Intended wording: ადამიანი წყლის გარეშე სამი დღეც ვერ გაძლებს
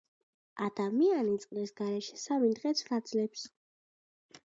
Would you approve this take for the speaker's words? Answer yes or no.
no